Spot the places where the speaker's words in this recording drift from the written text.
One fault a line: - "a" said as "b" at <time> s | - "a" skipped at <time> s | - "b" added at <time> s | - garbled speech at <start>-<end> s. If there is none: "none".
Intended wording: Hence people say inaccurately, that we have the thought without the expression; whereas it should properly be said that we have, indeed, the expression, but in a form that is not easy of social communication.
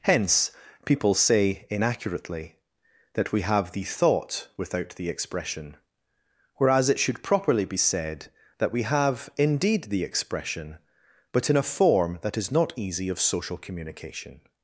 none